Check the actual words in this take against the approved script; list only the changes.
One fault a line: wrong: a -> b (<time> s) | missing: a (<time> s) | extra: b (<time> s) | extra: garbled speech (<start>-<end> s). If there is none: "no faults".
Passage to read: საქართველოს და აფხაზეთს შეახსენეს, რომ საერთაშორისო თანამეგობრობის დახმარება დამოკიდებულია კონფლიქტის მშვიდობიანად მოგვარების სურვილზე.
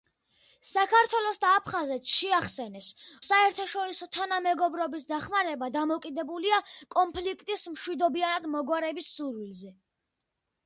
missing: რომ (2.9 s)